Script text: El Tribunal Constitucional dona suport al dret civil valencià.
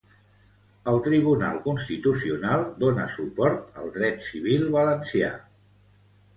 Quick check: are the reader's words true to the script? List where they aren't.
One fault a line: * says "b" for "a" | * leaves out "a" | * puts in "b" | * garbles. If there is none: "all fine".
all fine